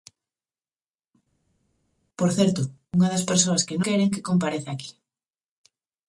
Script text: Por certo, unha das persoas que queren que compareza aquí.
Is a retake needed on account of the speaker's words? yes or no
no